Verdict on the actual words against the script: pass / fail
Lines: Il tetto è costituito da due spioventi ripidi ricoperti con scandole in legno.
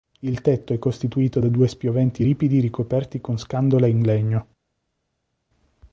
pass